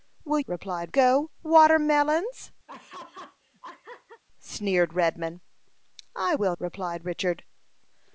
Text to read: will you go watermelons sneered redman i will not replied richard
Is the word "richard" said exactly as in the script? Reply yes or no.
yes